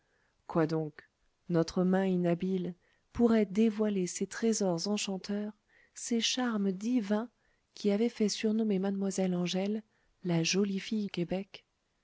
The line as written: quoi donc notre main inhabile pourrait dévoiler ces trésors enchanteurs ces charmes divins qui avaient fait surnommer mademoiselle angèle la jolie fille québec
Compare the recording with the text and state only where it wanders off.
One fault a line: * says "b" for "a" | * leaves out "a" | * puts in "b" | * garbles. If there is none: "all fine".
all fine